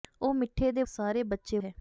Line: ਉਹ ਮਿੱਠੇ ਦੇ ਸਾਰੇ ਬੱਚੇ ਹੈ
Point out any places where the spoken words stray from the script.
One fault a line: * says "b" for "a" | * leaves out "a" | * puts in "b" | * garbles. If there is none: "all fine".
all fine